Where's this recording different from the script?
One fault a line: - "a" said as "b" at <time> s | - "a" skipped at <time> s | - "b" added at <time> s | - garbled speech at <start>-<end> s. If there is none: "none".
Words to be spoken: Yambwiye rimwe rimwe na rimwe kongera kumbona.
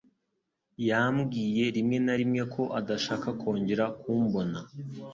- "na" added at 2.0 s
- "na rimwe" said as "ko adashaka" at 2.5 s